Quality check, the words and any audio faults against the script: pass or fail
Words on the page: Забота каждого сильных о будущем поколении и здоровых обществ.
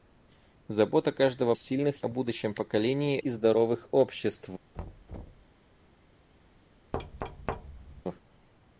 fail